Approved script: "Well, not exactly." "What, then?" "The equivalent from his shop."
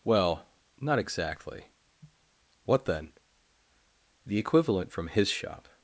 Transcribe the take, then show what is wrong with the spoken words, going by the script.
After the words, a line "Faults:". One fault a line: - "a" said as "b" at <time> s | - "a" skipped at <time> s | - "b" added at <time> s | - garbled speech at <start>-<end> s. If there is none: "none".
"Well, not exactly." "What, then?" "The equivalent from his shop."
Faults:
none